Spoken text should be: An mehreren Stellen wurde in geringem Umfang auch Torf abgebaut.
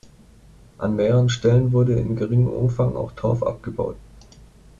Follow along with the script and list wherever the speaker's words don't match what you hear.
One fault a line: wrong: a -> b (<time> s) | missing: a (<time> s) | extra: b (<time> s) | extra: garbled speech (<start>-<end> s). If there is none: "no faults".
no faults